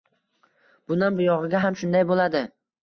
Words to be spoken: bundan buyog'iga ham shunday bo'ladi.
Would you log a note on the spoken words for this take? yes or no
no